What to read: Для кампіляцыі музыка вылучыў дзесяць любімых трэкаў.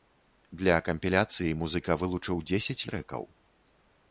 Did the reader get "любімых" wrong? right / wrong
wrong